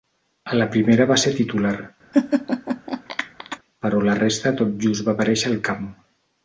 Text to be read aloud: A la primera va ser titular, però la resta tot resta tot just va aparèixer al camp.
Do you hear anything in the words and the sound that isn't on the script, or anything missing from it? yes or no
yes